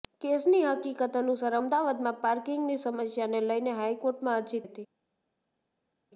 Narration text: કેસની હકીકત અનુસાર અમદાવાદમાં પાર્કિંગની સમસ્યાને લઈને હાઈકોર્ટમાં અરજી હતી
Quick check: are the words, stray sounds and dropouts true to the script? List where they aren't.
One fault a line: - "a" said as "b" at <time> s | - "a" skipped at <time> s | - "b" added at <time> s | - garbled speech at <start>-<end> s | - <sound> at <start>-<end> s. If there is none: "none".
none